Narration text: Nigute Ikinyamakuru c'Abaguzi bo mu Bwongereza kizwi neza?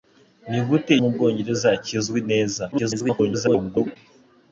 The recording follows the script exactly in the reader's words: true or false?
false